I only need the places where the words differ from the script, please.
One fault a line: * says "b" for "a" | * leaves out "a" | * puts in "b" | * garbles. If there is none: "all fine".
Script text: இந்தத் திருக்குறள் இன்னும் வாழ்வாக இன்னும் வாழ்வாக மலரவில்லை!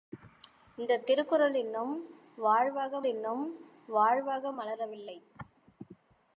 all fine